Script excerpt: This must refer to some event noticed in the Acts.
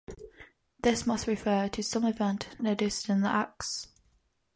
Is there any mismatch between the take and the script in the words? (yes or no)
no